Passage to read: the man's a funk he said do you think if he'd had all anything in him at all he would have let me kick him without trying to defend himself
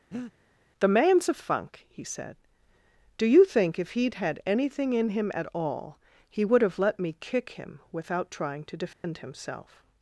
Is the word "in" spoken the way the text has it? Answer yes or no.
yes